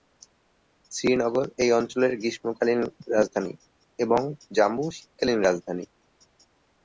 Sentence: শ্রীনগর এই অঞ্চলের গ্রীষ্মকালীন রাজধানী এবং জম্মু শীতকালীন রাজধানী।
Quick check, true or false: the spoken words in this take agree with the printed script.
true